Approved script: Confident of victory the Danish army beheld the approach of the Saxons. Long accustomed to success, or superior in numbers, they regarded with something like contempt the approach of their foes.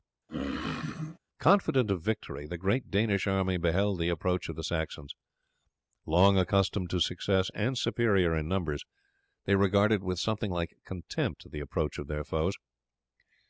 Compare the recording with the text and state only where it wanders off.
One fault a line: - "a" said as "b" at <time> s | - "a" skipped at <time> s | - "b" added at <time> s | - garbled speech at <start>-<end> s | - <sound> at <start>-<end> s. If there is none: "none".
- throat clearing at 0.3-1.2 s
- "great" added at 2.6 s
- "or" said as "and" at 7.5 s